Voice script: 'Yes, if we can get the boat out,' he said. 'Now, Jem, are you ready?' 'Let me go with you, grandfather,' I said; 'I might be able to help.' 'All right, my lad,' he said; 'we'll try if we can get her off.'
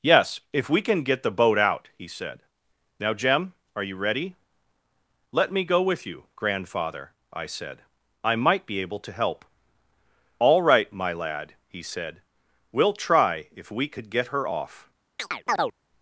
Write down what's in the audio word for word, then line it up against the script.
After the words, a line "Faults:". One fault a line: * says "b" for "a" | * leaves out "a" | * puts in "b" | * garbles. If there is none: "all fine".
'Yes, if we can get the boat out,' he said. 'Now, Jem, are you ready?' 'Let me go with you, grandfather,' I said; 'I might be able to help.' 'All right, my lad,' he said; 'we'll try if we could get her off.'
Faults:
* says "could" for "can"